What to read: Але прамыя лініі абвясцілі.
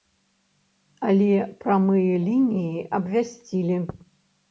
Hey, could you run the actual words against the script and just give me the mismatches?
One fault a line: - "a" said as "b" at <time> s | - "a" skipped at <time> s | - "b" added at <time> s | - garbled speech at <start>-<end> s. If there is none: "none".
none